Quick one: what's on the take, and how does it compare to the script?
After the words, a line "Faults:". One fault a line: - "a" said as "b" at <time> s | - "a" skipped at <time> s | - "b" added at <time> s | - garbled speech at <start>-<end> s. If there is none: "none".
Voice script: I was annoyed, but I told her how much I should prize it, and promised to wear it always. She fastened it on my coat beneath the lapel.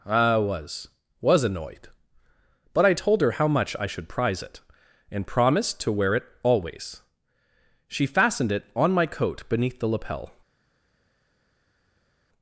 I was was annoyed, but I told her how much I should prize it, and promised to wear it always. She fastened it on my coat beneath the lapel.
Faults:
- "was" added at 1.2 s